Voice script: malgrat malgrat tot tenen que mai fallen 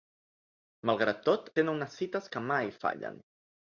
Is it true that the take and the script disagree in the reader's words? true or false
true